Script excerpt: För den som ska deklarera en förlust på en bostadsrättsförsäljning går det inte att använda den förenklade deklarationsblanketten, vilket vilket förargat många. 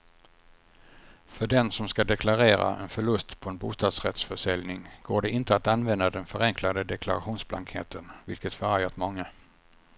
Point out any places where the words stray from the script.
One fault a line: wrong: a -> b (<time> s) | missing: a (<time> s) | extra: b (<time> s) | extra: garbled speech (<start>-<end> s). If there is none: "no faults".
missing: vilket (8.5 s)